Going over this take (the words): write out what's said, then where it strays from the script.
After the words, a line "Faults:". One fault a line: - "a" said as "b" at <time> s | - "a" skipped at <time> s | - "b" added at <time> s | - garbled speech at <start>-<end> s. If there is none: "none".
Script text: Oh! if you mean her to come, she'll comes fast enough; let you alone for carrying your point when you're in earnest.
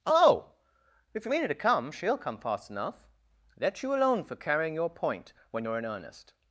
Oh! if you mean her to come, she'll come fast enough; let you alone for carrying your point when you're in earnest.
Faults:
- "comes" said as "come" at 2.2 s